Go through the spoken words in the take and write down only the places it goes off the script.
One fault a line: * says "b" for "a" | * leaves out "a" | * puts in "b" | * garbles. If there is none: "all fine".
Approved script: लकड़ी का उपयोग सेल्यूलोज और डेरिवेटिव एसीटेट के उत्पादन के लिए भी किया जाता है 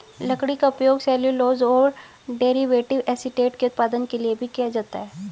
all fine